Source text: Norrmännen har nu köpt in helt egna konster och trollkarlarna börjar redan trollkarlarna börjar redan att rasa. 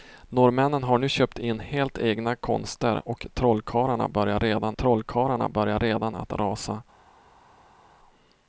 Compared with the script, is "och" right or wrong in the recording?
right